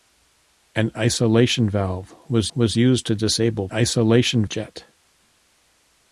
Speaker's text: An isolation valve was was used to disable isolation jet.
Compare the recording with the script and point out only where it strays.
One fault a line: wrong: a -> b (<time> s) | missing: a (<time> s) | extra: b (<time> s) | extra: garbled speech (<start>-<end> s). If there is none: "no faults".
no faults